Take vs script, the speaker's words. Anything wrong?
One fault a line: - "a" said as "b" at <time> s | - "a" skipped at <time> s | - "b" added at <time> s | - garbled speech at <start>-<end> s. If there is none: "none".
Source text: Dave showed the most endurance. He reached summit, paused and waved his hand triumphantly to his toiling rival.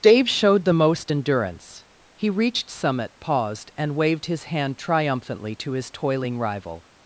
none